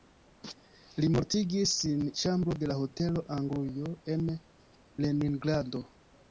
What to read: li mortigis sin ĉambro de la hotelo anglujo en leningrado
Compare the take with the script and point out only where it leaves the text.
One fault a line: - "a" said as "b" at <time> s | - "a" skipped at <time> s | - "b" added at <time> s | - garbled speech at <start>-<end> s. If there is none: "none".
none